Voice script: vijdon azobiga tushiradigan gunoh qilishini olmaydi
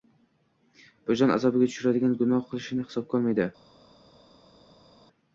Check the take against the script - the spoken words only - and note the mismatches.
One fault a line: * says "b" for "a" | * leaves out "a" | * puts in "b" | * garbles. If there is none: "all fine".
* puts in "hisobga"